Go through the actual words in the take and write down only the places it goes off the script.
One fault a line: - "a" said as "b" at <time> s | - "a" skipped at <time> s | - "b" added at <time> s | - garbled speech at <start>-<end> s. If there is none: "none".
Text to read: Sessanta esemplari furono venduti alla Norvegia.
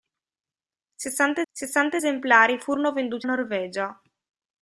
- "sessanta" added at 1.5 s
- "alla" skipped at 3.3 s